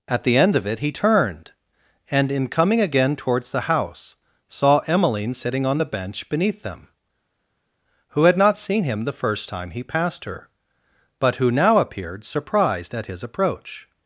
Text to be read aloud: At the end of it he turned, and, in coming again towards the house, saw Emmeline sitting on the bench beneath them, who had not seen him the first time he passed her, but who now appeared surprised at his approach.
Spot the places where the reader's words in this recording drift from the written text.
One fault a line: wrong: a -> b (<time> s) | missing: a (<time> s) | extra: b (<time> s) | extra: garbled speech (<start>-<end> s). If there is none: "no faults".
no faults